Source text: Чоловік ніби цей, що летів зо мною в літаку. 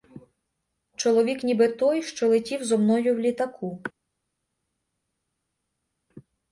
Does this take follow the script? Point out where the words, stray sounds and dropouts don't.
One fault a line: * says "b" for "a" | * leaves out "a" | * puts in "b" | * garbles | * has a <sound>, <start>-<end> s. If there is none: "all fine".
* says "той" for "цей"